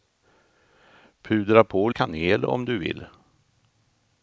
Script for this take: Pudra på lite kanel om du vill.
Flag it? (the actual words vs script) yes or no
yes